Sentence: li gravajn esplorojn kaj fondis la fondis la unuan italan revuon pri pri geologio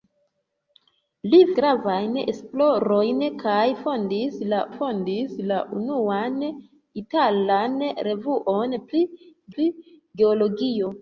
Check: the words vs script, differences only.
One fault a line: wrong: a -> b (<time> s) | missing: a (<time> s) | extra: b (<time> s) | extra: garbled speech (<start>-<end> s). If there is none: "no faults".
no faults